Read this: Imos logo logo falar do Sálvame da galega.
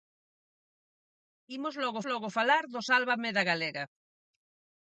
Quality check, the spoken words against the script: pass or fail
pass